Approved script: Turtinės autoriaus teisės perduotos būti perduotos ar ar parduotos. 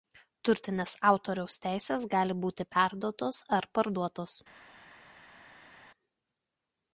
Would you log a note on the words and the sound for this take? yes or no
yes